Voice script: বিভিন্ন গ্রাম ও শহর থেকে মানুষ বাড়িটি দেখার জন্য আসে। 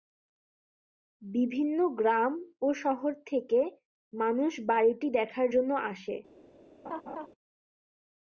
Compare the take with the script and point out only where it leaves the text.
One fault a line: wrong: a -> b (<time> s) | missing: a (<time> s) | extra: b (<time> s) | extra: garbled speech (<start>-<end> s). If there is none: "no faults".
no faults